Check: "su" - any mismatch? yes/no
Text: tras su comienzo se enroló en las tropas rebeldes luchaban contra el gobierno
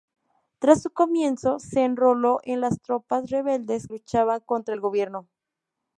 no